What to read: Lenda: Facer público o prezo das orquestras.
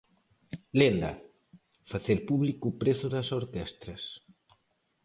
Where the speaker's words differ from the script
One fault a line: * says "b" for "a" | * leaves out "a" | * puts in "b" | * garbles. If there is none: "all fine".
all fine